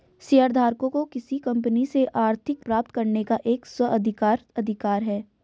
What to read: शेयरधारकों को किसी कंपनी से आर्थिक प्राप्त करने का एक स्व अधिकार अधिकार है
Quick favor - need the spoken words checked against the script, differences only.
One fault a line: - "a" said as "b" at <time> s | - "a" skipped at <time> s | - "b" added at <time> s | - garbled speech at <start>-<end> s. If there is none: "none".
none